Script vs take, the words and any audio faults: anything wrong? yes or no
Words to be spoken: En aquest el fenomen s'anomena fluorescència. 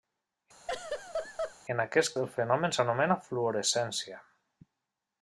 yes